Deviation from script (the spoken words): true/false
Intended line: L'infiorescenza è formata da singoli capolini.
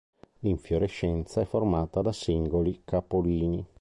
false